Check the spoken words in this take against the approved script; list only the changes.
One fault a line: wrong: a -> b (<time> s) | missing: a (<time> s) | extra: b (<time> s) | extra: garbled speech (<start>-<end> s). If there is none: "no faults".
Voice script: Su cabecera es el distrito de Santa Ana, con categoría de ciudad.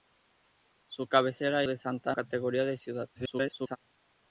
missing: es el distrito (1.6 s)
missing: Ana con (2.1 s)
extra: garbled speech (3.1-3.8 s)